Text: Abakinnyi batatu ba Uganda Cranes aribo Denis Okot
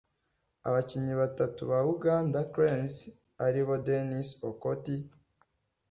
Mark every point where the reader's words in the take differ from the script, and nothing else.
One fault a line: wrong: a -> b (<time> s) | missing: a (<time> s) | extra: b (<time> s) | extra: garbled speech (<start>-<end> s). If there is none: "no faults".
no faults